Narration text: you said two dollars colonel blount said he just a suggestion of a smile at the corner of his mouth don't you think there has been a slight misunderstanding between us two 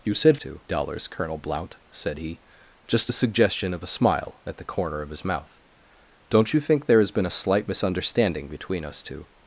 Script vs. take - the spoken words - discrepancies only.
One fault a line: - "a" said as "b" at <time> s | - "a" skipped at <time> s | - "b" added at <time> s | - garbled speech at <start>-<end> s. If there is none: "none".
none